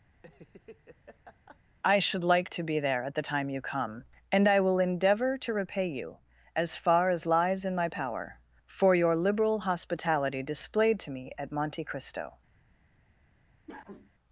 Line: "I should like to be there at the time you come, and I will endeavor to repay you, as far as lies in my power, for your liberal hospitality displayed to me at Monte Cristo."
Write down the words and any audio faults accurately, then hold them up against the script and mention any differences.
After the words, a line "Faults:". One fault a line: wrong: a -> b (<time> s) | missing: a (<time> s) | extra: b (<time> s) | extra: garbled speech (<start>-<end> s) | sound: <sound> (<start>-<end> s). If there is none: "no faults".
"I should like to be there at the time you come, and I will endeavor to repay you, as far as lies in my power, for your liberal hospitality displayed to me at Monte Cristo."
Faults:
sound: laugh (0.1-1.6 s)
sound: cough (13.7-14.1 s)